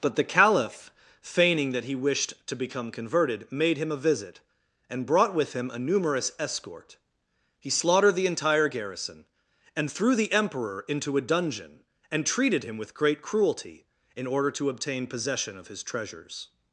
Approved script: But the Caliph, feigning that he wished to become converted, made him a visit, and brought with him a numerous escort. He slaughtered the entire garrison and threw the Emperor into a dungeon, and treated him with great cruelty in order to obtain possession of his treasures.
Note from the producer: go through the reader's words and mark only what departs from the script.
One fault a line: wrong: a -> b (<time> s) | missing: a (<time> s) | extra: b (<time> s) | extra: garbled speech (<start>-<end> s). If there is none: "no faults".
no faults